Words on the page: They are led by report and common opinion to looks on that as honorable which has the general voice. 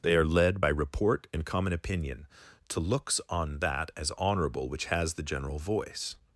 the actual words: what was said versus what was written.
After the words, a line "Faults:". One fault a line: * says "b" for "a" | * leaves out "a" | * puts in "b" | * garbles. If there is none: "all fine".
They are led by report and common opinion to looks on that as honorable which has the general voice.
Faults:
all fine